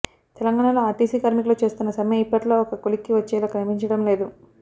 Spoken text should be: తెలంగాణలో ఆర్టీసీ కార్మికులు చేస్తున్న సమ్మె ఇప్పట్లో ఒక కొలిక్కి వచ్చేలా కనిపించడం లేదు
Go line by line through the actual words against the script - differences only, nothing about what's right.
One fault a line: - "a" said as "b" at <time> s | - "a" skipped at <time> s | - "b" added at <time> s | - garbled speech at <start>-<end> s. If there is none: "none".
none